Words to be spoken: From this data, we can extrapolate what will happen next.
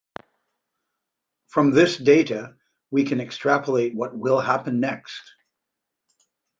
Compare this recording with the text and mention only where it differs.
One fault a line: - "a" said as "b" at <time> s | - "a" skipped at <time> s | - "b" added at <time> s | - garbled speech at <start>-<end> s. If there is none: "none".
none